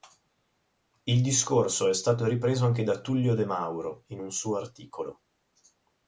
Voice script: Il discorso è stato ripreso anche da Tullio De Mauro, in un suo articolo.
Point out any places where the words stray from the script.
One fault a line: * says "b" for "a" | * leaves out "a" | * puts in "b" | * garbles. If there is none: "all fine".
all fine